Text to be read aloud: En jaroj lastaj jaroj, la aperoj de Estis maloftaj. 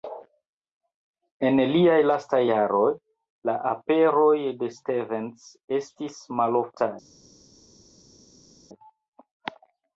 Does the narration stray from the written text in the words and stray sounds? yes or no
yes